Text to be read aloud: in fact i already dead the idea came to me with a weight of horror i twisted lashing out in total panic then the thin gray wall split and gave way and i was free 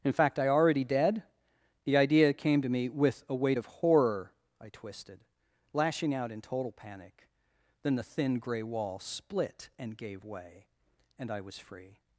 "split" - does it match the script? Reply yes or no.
yes